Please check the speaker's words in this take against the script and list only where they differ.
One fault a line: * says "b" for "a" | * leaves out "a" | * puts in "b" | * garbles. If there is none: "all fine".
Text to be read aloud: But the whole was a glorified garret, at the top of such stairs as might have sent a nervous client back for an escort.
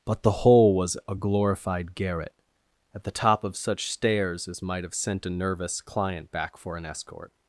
all fine